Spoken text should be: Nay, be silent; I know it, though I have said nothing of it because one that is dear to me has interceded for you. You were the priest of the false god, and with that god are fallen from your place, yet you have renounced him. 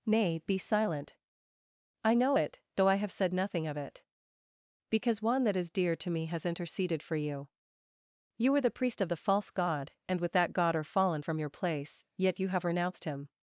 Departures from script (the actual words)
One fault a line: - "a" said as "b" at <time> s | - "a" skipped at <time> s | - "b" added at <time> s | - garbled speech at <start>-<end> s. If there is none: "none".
none